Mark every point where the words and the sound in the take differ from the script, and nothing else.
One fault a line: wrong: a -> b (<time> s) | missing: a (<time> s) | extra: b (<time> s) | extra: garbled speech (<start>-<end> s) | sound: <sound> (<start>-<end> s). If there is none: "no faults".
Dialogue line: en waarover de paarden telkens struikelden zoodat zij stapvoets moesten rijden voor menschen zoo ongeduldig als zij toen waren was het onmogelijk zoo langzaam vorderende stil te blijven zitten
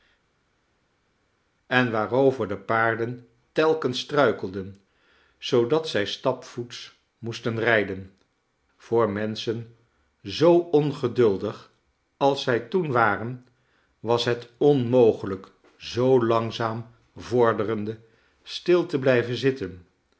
no faults